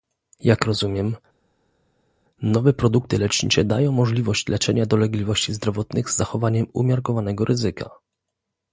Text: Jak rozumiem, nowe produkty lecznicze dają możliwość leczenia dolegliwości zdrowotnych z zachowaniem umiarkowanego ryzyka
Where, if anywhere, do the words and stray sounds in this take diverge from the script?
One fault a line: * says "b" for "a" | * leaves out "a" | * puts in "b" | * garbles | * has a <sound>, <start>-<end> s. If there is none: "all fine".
all fine